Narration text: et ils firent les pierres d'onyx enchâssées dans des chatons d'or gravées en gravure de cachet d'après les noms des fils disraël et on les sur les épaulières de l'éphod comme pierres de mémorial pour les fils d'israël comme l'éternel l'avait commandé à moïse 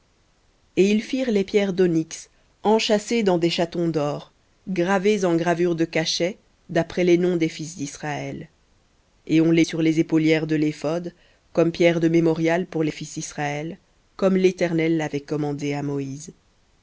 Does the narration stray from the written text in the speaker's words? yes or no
no